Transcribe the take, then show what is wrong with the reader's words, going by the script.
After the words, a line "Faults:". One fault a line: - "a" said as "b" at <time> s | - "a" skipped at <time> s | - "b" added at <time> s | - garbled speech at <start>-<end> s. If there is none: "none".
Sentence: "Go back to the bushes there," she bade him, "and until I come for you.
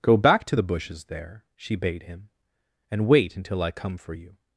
"Go back to the bushes there," she bade him, "and wait until I come for you.
Faults:
- "wait" added at 3.1 s